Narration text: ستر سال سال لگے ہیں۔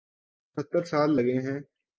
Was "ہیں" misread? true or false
false